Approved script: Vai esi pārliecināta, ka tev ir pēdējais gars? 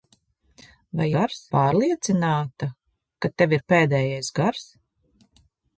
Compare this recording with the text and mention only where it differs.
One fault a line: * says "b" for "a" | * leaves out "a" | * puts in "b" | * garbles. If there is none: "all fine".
* says "gars" for "esi"